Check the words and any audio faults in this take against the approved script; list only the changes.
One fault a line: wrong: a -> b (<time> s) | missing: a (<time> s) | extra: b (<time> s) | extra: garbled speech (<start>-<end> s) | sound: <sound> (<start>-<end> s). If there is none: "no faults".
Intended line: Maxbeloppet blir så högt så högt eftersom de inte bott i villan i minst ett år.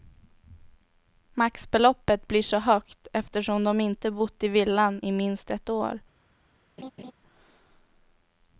missing: så högt (3.1 s)
sound: laugh (6.8-7.1 s)